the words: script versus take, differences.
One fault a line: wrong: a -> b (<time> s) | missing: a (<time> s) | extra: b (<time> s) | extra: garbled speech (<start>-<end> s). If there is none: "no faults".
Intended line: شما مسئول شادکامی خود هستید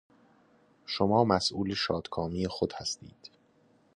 no faults